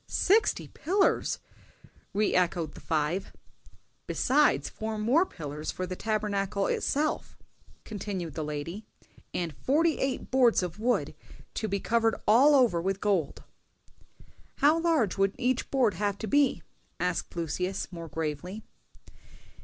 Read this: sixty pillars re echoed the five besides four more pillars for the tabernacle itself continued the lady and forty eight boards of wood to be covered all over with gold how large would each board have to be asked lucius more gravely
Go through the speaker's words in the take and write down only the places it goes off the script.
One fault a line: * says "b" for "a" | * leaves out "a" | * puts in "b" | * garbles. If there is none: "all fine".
all fine